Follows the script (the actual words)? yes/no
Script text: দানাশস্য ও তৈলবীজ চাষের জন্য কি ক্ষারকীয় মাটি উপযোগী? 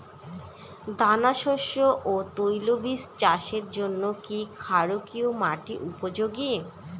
yes